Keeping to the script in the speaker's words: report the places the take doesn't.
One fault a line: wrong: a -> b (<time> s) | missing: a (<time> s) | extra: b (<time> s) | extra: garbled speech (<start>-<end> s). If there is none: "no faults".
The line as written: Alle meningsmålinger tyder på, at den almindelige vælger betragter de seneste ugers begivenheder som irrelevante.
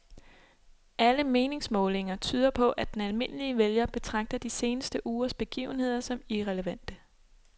no faults